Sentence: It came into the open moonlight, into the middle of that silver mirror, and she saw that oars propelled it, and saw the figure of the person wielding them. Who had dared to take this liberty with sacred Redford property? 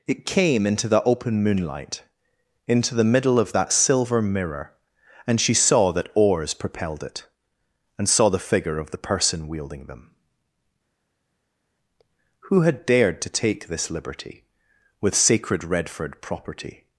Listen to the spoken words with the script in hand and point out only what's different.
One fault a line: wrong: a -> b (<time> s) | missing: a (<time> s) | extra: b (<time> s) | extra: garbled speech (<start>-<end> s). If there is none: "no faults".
no faults